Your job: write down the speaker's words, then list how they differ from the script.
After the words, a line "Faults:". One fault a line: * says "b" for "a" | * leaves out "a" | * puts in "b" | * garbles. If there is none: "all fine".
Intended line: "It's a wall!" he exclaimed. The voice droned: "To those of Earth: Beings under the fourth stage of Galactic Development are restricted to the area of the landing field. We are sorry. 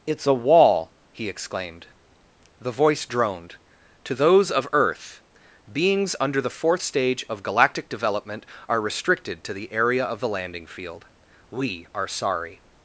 "It's a wall!" he exclaimed. The voice droned: "To those of Earth: Beings under the fourth stage of Galactic Development are restricted to the area of the landing field. We are sorry.
Faults:
all fine